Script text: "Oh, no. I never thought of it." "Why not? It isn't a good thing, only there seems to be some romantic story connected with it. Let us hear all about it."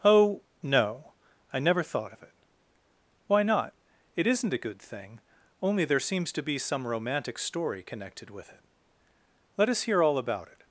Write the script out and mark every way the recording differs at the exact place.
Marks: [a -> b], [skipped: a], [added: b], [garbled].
"Oh, no. I never thought of it." "Why not? It isn't a good thing, only there seems to be some romantic story connected with it. Let us hear all about it."